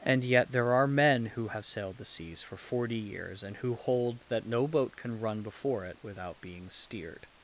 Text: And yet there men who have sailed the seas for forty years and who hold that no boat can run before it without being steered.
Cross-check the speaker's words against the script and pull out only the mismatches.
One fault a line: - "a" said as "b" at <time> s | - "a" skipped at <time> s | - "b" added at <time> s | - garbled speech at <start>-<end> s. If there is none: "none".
- "are" added at 0.7 s